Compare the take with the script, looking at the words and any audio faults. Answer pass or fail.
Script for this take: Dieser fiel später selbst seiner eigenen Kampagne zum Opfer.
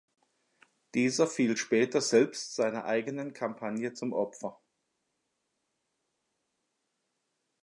pass